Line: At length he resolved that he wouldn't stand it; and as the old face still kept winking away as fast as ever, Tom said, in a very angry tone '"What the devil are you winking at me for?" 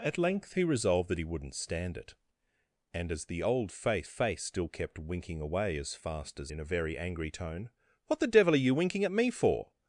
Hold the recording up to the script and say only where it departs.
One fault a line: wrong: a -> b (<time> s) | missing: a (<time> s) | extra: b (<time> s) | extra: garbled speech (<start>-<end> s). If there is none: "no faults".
extra: face (4.1 s)
missing: ever Tom said (6.5 s)